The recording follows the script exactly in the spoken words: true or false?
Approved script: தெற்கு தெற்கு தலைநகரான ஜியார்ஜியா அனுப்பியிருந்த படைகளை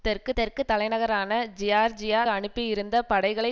true